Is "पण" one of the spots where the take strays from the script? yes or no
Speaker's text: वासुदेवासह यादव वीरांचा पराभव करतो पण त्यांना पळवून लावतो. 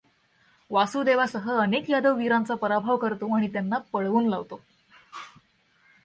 yes